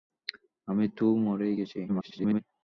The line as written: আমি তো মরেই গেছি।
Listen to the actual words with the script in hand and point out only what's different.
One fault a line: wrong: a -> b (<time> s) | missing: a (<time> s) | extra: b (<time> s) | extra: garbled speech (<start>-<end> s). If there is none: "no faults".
extra: garbled speech (1.9-2.4 s)